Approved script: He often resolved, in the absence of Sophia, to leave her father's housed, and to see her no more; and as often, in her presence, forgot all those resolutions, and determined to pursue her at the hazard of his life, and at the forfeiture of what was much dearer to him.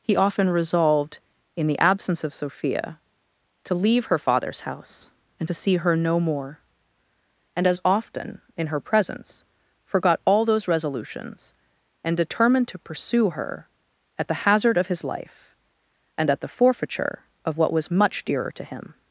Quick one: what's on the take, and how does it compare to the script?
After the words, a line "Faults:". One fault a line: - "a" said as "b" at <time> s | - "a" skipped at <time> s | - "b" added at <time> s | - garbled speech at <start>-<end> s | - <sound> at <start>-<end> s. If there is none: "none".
He often resolved, in the absence of Sophia, to leave her father's house, and to see her no more; and as often, in her presence, forgot all those resolutions, and determined to pursue her at the hazard of his life, and at the forfeiture of what was much dearer to him.
Faults:
- "housed" said as "house" at 4.6 s